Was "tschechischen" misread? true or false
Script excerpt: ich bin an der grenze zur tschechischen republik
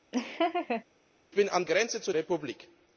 true